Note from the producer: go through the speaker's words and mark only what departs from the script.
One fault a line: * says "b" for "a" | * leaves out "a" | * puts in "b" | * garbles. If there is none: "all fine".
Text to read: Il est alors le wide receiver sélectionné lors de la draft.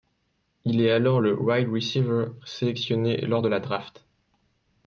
all fine